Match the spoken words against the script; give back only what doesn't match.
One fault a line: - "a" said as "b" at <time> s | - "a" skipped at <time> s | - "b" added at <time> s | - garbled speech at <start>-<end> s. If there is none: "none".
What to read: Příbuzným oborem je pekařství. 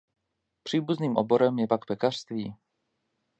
- "pak" added at 1.7 s